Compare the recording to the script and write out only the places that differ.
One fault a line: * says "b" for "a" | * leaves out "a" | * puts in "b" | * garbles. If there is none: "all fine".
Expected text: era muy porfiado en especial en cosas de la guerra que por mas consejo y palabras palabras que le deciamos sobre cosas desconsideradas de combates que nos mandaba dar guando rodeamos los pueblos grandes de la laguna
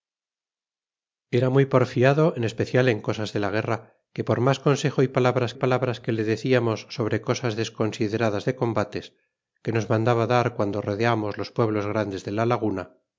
all fine